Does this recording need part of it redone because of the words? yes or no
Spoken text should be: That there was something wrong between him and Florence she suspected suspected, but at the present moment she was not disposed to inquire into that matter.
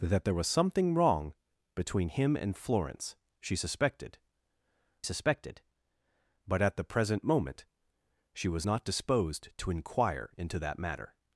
no